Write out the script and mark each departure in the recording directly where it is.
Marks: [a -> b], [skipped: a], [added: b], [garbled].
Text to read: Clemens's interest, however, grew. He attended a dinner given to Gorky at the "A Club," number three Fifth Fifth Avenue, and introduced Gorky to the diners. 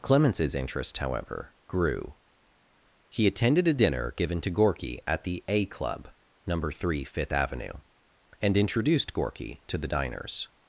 Clemens's interest, however, grew. He attended a dinner given to Gorky at the "A Club," number three Fifth [skipped: Fifth] Avenue, and introduced Gorky to the diners.